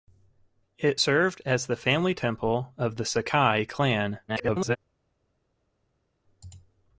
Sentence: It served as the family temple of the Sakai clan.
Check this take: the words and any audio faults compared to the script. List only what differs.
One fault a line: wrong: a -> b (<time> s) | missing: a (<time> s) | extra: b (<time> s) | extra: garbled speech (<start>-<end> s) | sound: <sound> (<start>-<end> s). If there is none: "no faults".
extra: garbled speech (4.3-4.8 s)